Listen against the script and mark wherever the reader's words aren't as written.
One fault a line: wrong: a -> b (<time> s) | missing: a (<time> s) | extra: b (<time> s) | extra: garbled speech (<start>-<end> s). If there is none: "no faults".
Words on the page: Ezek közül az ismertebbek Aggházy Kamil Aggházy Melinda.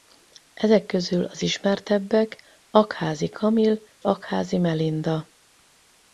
no faults